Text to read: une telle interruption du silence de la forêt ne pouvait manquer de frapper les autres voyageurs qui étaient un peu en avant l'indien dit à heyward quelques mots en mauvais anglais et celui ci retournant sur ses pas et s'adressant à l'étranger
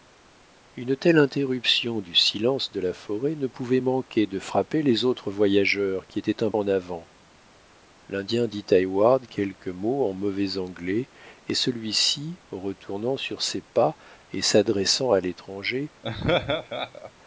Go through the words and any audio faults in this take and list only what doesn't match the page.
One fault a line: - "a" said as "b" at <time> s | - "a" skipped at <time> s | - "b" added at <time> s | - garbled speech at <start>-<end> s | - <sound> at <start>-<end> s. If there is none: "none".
- "peu" skipped at 6.5 s
- laugh at 16.0-17.1 s